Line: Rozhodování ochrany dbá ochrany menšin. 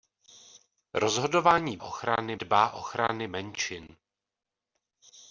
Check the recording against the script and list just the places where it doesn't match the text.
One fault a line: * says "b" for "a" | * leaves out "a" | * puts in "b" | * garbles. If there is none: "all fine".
all fine